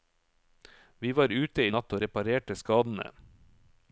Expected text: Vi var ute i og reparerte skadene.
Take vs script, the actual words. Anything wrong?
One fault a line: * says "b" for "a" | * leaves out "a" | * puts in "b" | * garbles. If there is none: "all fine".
* puts in "natt"